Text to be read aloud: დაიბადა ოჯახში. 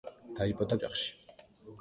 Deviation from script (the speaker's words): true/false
false